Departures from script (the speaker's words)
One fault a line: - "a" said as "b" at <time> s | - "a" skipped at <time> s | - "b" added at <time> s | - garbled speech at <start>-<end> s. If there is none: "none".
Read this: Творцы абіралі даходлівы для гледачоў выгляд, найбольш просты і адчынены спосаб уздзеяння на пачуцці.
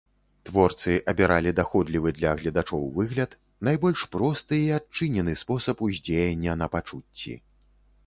none